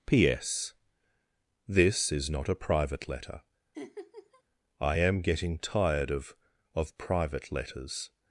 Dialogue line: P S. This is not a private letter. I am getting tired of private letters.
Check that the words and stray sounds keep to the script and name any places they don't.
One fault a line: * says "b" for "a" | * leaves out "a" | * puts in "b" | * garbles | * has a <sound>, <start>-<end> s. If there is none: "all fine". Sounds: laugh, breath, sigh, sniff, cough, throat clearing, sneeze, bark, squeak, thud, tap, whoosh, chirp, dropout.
* has a laugh, 3.7-4.4 s
* puts in "of"